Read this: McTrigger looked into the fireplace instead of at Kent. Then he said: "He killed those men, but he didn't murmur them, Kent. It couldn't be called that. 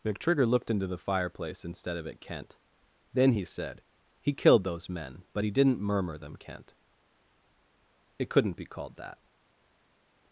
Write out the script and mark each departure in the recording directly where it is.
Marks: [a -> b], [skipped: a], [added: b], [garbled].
McTrigger looked into the fireplace instead of at Kent. Then he said: "He killed those men, but he didn't murmur them, Kent. It couldn't be called that.